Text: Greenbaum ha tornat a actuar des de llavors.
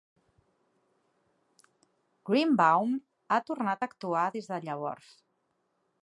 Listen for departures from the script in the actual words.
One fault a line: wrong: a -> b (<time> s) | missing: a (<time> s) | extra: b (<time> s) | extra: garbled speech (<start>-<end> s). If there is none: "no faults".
no faults